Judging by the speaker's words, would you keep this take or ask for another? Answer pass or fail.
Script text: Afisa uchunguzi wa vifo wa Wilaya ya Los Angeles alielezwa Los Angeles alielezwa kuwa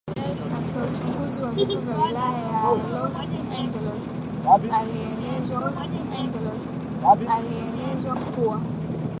pass